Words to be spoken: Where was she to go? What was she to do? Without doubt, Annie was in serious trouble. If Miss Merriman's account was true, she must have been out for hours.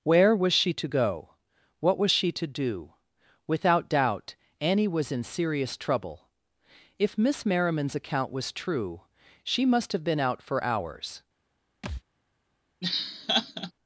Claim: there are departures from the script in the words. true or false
false